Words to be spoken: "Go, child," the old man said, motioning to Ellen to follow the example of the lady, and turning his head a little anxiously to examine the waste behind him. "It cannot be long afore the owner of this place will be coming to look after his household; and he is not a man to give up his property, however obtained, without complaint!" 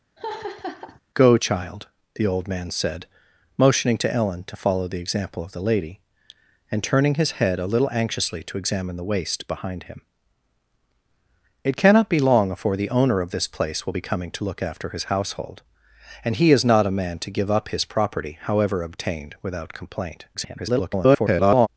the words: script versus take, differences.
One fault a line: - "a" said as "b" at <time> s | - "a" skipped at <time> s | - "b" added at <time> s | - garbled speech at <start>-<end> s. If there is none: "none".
- garbled speech at 20.3-21.7 s